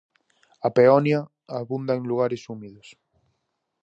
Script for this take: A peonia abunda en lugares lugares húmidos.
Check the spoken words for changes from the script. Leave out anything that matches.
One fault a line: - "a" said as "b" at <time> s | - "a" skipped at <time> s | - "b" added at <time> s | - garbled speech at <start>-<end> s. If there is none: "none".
- "lugares" skipped at 2.5 s